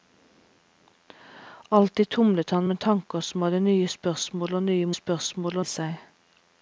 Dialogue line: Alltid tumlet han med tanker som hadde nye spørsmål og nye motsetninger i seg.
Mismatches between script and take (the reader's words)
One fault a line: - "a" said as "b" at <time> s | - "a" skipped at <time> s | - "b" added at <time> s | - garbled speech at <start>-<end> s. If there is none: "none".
- "motsetninger" said as "spørsmål" at 4.9 s